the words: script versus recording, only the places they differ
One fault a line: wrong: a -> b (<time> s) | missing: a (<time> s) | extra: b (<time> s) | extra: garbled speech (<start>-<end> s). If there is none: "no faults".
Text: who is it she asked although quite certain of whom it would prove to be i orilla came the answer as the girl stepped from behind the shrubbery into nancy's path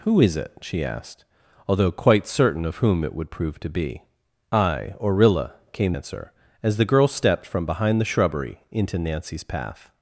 missing: the (5.9 s)